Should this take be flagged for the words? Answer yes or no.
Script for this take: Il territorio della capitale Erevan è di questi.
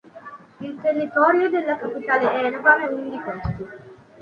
yes